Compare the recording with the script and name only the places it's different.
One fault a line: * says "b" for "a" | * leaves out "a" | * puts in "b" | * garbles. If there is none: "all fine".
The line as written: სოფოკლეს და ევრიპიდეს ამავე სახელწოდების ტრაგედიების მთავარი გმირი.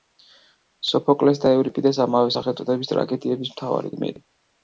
all fine